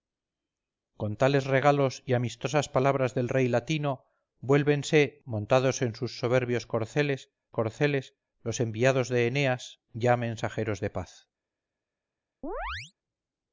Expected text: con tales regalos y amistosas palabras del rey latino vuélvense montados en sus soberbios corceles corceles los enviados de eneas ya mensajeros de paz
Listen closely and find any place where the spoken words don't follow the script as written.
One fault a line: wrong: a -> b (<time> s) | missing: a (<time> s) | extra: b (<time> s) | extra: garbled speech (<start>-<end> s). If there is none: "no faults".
no faults